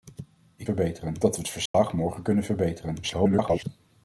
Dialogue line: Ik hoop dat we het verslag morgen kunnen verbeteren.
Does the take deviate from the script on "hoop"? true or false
true